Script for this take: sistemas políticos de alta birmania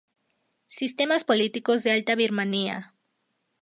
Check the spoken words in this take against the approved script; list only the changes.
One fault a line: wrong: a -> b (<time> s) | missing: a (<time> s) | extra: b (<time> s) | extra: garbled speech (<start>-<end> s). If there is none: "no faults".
no faults